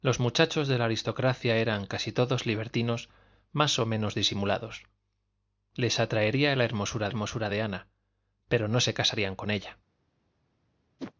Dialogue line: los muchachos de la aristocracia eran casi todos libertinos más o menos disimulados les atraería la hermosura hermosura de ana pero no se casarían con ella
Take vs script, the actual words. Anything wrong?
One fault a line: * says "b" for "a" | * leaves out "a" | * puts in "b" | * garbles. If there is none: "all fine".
all fine